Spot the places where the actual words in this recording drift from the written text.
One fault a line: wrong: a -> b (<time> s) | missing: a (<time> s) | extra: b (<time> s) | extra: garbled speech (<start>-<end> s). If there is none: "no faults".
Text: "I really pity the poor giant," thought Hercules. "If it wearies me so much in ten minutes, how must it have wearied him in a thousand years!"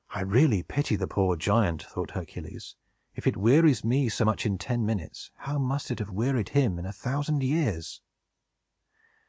no faults